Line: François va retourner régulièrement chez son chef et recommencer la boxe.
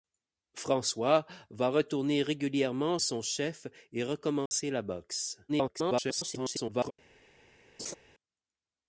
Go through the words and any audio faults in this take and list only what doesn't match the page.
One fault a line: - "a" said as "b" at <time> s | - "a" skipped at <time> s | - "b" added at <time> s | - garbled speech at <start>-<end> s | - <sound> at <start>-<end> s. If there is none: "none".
- "chez" skipped at 3.0 s
- dropout at 4.5-4.5 s
- garbled speech at 5.5-6.9 s
- laugh at 7.8-8.0 s